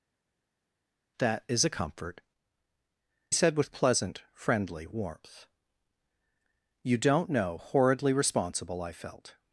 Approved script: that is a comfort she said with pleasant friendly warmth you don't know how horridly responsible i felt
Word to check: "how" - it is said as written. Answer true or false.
false